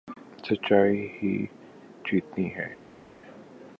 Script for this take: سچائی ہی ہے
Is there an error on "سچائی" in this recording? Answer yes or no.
no